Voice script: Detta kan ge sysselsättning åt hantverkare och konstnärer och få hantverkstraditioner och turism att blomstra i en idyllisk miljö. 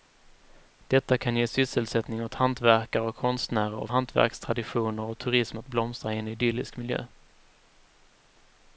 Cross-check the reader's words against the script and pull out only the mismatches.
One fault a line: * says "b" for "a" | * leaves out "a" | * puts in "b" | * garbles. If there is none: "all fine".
* leaves out "få"